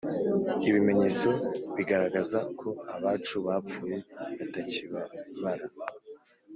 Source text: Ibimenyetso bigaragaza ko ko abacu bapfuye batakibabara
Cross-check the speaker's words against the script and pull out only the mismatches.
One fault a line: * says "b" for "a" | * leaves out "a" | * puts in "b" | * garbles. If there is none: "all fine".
* leaves out "ko"